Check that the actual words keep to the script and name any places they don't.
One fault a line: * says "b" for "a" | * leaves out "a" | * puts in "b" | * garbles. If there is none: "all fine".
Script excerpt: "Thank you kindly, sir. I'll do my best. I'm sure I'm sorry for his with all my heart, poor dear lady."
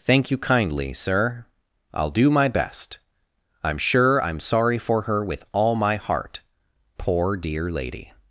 * says "her" for "his"